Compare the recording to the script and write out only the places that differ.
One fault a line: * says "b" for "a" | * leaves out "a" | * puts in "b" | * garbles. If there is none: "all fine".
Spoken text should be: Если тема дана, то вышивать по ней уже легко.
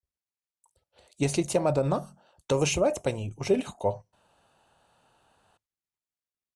all fine